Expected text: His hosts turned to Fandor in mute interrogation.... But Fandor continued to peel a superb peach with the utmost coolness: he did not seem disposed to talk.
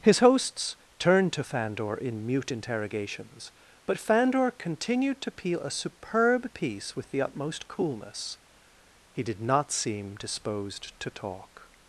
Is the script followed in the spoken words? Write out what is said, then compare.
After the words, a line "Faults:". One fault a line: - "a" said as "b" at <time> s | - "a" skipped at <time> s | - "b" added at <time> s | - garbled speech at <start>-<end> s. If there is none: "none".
His hosts turned to Fandor in mute interrogations.... But Fandor continued to peel a superb piece with the utmost coolness: he did not seem disposed to talk.
Faults:
- "interrogation" said as "interrogations" at 2.5 s
- "peach" said as "piece" at 6.5 s